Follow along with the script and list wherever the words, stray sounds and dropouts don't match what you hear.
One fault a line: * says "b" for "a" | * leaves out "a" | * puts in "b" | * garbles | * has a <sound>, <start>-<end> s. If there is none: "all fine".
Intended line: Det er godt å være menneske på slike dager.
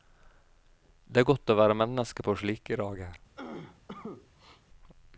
* has a cough, 3.4-4.6 s